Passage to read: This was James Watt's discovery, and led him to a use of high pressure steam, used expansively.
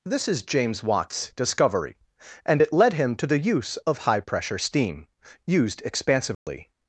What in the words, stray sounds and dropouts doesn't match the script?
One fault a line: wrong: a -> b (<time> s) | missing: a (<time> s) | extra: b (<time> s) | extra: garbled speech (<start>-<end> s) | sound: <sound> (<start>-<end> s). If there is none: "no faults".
wrong: was -> is (0.3 s)
extra: it (2.6 s)
wrong: a -> the (3.3 s)
sound: dropout (6.3-6.5 s)